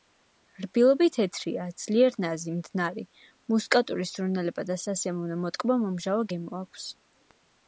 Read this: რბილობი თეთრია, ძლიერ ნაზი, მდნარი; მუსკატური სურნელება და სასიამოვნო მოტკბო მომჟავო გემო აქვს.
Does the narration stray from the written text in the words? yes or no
no